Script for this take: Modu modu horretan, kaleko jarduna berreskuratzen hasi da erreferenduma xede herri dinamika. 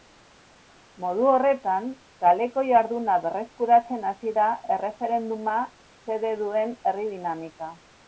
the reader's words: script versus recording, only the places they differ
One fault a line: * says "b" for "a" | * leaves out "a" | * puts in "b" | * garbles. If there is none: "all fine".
* leaves out "modu"
* puts in "duen"